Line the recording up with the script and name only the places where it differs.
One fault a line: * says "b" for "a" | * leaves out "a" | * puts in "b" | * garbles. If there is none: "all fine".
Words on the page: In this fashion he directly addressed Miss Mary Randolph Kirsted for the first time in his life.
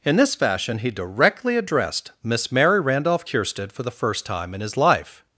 all fine